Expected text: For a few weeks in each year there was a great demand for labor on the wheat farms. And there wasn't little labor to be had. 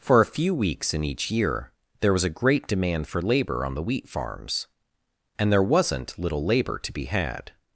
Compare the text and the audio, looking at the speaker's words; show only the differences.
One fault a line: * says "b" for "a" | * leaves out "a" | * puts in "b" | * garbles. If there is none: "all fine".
all fine